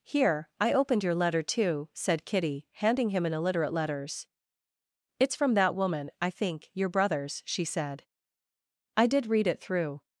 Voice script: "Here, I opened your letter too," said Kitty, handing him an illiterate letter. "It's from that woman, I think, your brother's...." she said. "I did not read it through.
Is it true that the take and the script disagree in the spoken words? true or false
true